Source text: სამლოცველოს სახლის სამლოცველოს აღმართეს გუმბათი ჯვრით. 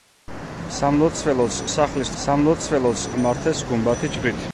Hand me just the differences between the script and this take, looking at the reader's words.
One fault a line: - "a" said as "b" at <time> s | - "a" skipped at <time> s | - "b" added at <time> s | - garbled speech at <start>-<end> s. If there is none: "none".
none